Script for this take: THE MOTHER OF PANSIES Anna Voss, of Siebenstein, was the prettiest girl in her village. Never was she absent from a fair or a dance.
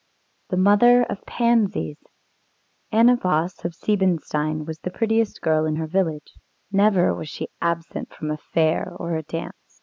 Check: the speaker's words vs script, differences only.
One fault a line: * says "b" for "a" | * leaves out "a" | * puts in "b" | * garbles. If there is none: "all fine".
all fine